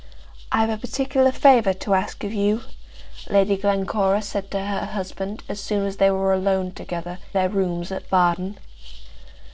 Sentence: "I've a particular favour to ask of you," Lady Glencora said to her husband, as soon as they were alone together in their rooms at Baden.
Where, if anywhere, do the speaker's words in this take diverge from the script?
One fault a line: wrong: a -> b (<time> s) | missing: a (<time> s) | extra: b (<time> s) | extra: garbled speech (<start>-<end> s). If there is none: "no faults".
missing: in (7.2 s)